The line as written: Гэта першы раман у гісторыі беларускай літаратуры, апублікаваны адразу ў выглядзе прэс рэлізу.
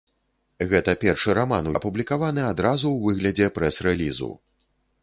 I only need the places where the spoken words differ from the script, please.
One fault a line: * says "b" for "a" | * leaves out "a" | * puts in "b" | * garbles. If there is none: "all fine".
* leaves out "гісторыі беларускай літаратуры"